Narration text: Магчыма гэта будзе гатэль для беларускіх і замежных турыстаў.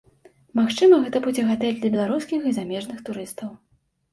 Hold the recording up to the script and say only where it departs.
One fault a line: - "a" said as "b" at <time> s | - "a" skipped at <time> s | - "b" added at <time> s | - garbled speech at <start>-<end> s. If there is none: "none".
none